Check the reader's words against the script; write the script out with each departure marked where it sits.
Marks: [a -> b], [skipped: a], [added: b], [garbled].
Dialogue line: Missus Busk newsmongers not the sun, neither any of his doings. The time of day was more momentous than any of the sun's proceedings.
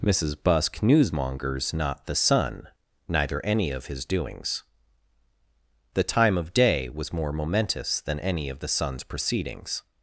Missus Busk newsmongers not the sun, neither any of his doings. The time of day was more momentous than any of the sun's proceedings.